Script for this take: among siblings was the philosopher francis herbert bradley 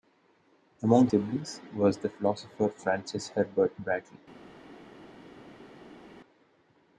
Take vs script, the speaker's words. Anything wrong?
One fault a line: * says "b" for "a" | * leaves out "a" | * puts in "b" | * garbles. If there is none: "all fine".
all fine